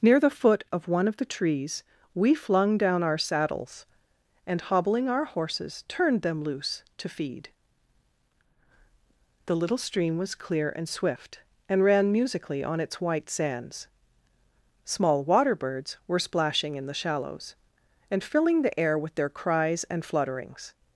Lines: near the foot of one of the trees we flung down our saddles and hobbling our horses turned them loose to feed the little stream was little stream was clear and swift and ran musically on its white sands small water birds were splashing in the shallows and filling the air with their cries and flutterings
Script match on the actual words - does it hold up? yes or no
no